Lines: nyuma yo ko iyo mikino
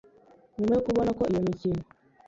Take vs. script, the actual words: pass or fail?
fail